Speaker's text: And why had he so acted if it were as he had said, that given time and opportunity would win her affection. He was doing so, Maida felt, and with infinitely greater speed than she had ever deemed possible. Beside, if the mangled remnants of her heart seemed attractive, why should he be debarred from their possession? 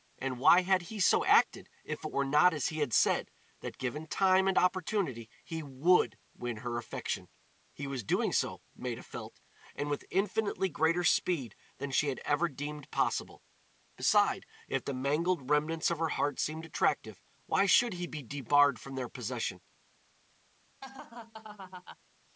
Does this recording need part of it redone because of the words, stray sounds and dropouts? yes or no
yes